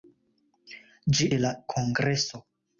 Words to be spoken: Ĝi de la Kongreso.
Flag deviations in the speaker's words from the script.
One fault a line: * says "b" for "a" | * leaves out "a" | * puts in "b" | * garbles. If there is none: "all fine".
all fine